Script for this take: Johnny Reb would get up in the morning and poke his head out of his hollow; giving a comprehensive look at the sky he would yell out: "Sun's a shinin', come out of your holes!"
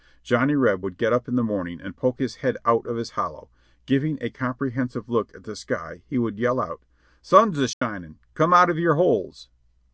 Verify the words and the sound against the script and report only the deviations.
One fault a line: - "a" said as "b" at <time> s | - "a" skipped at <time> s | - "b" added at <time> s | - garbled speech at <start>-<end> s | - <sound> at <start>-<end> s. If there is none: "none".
- dropout at 7.7-7.8 s